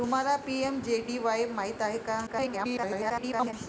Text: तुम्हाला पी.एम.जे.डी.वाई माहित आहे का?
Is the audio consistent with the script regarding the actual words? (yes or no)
no